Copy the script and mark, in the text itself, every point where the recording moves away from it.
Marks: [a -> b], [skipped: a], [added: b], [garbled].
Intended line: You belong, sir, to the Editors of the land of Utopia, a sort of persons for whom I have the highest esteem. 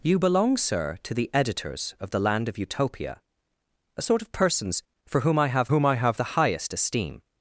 You belong, sir, to the Editors of the land of Utopia, a sort of persons for whom I have [added: whom I have] the highest esteem.